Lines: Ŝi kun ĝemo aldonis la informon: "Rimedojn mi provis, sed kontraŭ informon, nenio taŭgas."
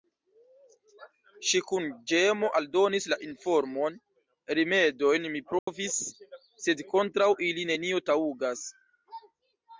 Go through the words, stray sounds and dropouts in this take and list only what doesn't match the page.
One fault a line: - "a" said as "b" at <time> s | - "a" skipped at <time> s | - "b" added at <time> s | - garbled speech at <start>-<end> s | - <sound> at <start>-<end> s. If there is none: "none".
- dropout at 5.6-5.7 s
- "informon" said as "ili" at 7.5 s